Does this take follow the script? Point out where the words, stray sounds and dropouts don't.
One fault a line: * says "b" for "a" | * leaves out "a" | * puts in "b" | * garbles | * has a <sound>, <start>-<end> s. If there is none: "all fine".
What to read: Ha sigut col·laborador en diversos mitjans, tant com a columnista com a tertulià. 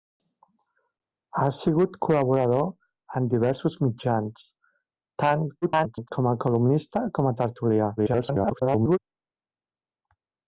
* garbles
* garbles